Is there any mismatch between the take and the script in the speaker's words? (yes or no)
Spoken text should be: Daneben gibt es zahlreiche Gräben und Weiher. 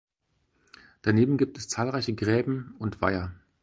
no